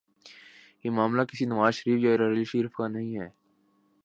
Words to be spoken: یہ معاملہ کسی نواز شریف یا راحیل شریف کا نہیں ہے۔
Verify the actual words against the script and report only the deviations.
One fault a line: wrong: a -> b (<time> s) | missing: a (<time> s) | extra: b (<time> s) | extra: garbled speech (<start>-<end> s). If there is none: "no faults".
no faults